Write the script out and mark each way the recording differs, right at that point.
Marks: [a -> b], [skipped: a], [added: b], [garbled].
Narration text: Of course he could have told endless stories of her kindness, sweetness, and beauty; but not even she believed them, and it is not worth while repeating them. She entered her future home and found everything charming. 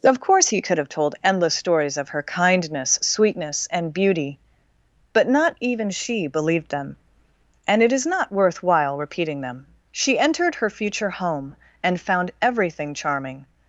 Of course he could have told endless stories of her kindness, sweetness, and beauty; but not even she believed them, and it is not worth while repeating them. She entered her future home and found everything charming.